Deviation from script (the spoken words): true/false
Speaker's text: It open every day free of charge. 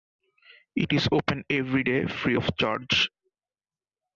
true